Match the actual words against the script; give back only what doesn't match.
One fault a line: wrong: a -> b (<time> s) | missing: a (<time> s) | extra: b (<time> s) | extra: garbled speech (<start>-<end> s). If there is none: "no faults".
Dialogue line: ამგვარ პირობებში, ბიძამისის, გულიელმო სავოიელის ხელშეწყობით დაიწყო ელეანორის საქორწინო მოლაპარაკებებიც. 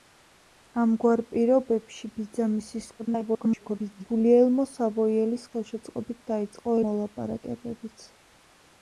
extra: garbled speech (3.0-4.0 s)
missing: ელეანორის საქორწინო (6.8 s)